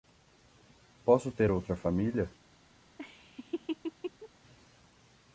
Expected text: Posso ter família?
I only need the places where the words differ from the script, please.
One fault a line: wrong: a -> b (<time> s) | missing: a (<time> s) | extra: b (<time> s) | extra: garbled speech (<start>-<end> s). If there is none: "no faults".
extra: outra (1.5 s)